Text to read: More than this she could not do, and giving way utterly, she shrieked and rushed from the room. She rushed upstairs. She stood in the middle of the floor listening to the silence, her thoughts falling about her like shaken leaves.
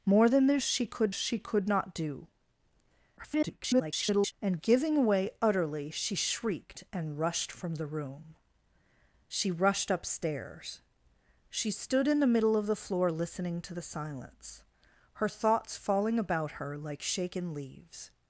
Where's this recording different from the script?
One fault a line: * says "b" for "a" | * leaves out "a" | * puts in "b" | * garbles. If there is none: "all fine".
* puts in "she could"
* garbles